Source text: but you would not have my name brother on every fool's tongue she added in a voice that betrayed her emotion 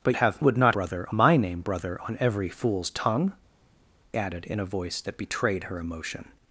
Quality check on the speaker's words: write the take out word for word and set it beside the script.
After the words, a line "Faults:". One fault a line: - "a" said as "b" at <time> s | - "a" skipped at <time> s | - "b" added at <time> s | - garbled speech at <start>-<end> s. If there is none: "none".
but have would not brother my name brother on every fool's tongue added in a voice that betrayed her emotion
Faults:
- "you" said as "have" at 0.2 s
- "have" said as "brother" at 0.7 s
- "she" skipped at 3.3 s